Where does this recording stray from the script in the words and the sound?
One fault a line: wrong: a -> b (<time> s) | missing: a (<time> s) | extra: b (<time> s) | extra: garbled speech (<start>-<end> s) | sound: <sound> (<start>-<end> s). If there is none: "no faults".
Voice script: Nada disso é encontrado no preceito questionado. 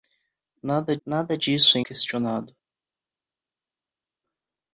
extra: nada (1.1 s)
missing: encontrado no preceito (1.8 s)